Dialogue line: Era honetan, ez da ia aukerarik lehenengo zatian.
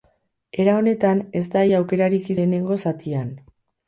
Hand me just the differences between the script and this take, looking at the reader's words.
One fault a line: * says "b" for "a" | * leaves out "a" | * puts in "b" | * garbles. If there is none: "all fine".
all fine